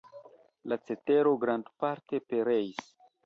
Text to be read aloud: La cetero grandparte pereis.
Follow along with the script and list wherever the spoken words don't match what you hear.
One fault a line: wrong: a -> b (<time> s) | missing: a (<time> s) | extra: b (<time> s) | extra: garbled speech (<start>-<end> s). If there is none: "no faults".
no faults